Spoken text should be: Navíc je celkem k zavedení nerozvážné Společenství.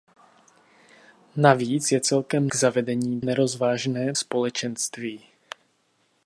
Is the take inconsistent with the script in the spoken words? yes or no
no